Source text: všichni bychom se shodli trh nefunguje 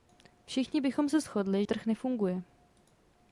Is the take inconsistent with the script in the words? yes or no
no